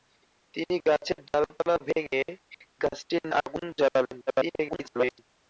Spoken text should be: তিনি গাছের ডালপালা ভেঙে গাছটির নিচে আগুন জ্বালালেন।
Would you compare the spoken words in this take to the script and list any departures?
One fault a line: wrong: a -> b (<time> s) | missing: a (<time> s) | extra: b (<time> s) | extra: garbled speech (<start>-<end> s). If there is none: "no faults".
missing: নিচে (3.2 s)
extra: garbled speech (4.3-5.2 s)